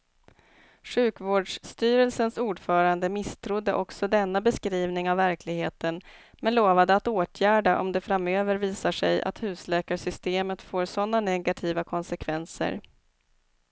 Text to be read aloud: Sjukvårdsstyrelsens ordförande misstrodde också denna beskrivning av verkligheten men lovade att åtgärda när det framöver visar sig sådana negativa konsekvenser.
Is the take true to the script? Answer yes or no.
no